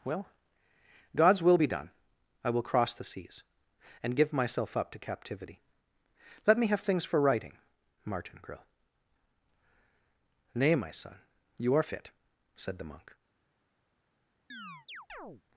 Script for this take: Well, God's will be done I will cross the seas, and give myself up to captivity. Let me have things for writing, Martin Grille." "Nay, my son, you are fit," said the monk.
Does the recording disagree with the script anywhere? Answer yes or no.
no